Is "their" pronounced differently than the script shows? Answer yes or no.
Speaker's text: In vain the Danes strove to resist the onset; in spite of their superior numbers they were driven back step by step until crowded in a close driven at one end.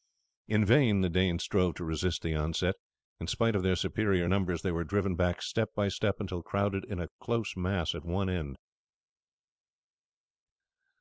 no